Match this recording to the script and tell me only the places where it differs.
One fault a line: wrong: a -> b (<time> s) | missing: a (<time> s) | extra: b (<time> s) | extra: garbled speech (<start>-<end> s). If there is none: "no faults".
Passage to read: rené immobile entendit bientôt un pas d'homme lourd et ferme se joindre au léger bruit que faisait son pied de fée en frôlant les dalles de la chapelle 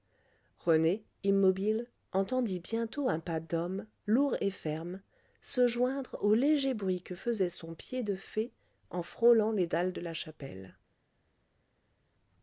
no faults